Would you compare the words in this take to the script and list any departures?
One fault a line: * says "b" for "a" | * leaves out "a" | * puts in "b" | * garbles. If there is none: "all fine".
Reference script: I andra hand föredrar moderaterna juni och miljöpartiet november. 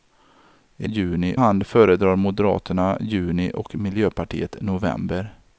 * says "juni" for "andra"